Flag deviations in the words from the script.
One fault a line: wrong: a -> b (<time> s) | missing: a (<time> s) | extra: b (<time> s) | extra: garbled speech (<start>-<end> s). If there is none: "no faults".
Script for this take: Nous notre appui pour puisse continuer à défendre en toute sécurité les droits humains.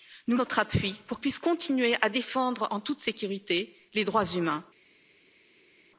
no faults